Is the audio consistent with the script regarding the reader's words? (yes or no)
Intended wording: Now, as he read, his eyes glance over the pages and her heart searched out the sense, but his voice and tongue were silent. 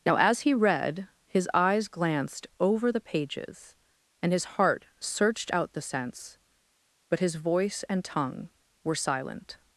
no